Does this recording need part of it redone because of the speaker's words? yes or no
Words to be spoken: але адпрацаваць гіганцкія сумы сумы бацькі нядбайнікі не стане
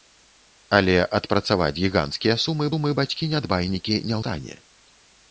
no